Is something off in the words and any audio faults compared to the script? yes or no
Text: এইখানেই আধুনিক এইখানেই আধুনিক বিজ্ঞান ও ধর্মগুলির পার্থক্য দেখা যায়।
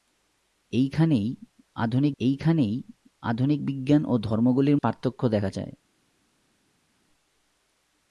no